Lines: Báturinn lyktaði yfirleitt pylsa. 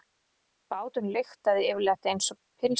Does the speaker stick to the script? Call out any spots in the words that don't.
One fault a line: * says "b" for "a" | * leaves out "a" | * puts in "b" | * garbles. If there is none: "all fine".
* puts in "einsog"